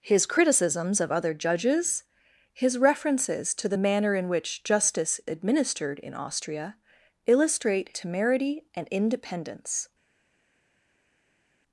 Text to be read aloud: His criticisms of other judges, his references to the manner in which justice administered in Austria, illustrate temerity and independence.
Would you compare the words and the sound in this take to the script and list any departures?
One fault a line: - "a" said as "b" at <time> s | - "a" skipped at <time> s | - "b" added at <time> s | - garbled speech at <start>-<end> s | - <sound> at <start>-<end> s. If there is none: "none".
none